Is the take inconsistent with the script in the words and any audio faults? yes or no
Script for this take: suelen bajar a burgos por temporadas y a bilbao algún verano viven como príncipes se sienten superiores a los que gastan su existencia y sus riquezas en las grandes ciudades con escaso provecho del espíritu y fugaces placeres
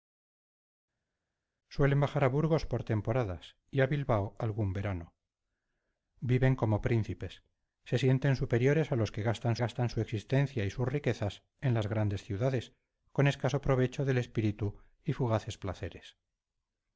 yes